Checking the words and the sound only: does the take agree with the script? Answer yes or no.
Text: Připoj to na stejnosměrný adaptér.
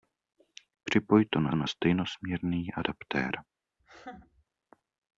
no